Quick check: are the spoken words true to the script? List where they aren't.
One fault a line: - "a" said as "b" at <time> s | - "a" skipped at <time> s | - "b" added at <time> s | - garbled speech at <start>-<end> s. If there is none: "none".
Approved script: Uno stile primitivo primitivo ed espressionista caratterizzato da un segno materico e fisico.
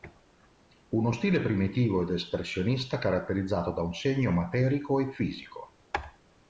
- "primitivo" skipped at 2.0 s